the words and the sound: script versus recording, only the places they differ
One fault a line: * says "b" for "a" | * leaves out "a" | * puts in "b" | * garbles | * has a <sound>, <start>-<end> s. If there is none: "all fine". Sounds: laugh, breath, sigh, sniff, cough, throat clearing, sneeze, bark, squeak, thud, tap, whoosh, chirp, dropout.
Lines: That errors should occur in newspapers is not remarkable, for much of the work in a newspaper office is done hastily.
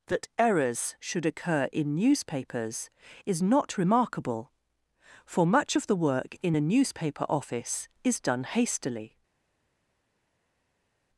all fine